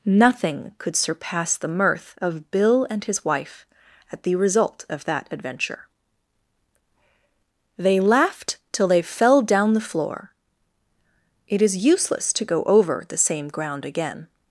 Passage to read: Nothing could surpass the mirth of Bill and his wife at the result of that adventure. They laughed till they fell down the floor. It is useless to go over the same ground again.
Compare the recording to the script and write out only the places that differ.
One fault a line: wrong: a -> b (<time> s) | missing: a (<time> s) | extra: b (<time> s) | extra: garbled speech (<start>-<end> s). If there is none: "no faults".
no faults